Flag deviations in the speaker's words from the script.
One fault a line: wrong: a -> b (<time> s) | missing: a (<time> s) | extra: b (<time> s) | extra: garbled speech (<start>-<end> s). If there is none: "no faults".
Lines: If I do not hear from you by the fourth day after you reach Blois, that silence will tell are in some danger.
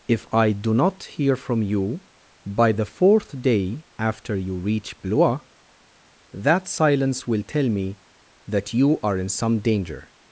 extra: me that you (7.7 s)